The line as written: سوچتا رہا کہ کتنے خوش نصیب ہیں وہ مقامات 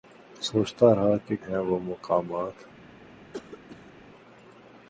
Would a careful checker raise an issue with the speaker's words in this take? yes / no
yes